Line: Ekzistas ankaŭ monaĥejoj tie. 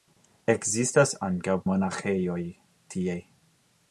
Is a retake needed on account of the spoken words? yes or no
no